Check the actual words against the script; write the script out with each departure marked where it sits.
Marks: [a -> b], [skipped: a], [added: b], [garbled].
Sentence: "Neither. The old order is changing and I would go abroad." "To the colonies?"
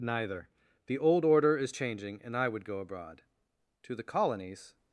"Neither. The old order is changing and I would go abroad." "To the colonies?"